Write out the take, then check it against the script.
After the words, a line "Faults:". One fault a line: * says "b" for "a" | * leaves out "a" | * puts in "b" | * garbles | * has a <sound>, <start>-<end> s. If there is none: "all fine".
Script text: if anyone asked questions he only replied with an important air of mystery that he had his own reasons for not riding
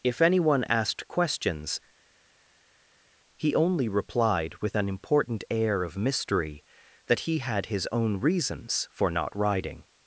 if anyone asked questions he only replied with an important air of mystery that he had his own reasons for not riding
Faults:
all fine